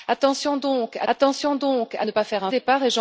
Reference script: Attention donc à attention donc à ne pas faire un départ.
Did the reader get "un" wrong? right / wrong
right